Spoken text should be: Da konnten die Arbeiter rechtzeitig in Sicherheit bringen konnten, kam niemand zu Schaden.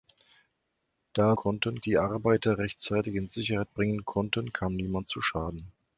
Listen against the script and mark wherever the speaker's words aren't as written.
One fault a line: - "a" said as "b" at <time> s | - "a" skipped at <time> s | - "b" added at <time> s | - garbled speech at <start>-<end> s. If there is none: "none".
none